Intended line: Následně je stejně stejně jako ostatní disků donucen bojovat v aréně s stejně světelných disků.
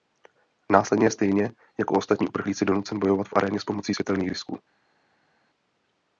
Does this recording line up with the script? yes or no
no